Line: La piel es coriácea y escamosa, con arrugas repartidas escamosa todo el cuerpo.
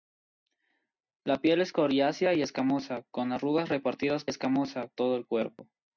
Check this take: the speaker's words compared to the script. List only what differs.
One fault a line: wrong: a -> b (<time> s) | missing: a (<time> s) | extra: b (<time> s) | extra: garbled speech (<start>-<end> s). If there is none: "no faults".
no faults